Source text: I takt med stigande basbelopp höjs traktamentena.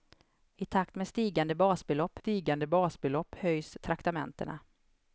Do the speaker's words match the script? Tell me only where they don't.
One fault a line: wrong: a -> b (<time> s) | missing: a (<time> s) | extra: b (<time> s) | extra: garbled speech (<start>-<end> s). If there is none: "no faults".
extra: stigande basbelopp (2.2 s)